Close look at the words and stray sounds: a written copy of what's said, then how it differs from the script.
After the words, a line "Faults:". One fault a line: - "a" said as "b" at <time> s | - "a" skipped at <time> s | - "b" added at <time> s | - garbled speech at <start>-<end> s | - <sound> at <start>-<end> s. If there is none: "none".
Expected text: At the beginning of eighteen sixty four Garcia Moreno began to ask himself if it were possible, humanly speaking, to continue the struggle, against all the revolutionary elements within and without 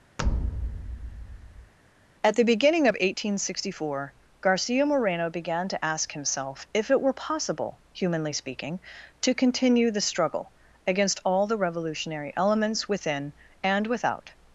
At the beginning of eighteen sixty four Garcia Moreno began to ask himself if it were possible, humanly speaking, to continue the struggle, against all the revolutionary elements within and without
Faults:
- thud at 0.2-1.7 s